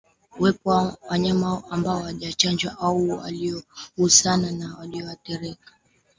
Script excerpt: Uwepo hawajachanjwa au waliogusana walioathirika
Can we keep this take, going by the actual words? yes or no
no